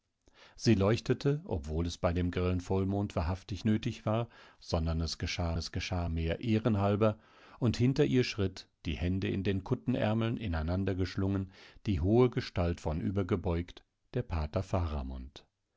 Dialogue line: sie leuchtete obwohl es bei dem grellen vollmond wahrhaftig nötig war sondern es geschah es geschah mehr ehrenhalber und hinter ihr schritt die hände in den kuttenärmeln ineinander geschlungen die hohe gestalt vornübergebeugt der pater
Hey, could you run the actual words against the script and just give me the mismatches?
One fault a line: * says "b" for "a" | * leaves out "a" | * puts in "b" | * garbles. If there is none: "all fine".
all fine